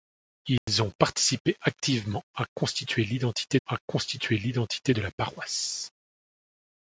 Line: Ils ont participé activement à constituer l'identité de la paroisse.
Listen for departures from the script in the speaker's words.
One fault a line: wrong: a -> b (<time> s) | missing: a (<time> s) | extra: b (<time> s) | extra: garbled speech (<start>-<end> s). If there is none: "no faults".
extra: à constituer l'identité (3.6 s)